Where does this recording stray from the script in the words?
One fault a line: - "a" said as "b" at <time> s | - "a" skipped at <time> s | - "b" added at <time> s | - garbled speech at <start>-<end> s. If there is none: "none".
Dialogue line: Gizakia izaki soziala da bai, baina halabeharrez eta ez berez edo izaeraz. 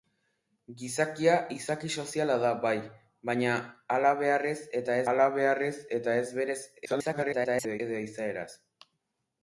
- "halabeharrez eta" added at 5.1 s
- garbled speech at 6.8-7.8 s